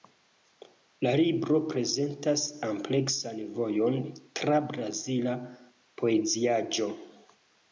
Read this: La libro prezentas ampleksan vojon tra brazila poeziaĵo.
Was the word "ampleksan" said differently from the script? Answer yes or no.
no